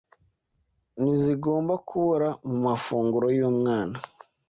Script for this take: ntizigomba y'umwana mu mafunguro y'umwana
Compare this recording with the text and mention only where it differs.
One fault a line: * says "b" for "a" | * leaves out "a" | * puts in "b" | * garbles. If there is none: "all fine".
* says "kubura" for "y'umwana"